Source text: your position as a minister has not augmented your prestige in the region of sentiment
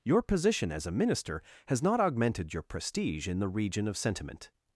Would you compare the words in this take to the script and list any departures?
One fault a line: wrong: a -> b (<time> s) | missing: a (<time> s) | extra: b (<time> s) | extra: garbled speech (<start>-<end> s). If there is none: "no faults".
no faults